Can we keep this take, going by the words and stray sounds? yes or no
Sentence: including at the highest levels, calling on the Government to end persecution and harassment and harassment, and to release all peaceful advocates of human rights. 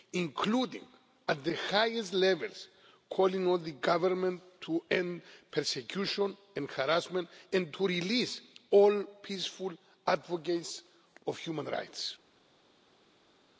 no